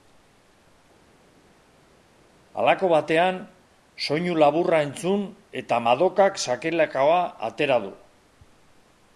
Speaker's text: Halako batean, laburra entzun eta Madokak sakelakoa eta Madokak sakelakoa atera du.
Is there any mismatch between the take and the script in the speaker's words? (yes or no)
yes